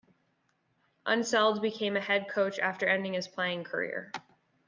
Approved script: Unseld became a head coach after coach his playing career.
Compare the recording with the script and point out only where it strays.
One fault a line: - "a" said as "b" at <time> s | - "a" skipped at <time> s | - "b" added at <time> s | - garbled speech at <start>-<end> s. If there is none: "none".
- "coach" said as "ending" at 2.9 s